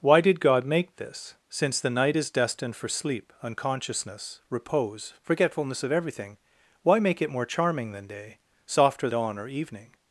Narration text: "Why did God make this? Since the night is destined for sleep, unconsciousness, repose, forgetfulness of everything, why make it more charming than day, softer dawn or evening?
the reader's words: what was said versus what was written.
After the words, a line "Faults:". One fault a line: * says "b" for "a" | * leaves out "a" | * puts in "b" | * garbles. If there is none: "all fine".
"Why did God make this? Since the night is destined for sleep, unconsciousness, repose, forgetfulness of everything, why make it more charming than day, softer dawn or evening?
Faults:
all fine